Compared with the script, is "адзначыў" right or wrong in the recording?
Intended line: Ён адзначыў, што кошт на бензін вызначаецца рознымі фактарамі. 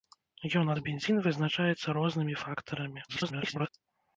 wrong